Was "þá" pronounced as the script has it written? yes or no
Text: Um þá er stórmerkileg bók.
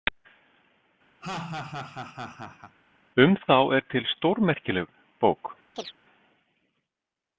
yes